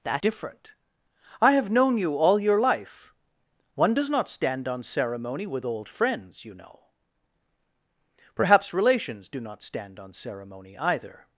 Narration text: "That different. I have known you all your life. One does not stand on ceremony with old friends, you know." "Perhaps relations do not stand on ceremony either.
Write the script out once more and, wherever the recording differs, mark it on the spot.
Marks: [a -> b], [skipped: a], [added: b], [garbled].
"That different. I have known you all your life. One does not stand on ceremony with old friends, you know." "Perhaps relations do not stand on ceremony either.